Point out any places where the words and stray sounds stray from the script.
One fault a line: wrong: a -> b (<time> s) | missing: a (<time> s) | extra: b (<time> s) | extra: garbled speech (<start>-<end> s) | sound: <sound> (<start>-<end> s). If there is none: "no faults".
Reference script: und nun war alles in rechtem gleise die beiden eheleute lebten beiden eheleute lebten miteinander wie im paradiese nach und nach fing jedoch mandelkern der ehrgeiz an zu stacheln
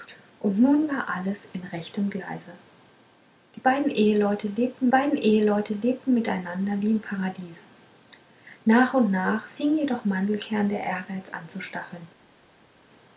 no faults